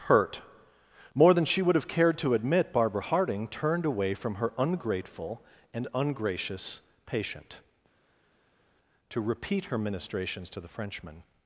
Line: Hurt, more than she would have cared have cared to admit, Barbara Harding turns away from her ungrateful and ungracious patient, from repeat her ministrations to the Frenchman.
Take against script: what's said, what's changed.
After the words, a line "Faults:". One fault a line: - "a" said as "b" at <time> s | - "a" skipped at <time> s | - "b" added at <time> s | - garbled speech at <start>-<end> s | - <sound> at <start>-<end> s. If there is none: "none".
Hurt, more than she would have cared to admit, Barbara Harding turned away from her ungrateful and ungracious patient, to repeat her ministrations to the Frenchman.
Faults:
- "have cared" skipped at 2.2 s
- "turns" said as "turned" at 3.5 s
- "from" said as "to" at 9.1 s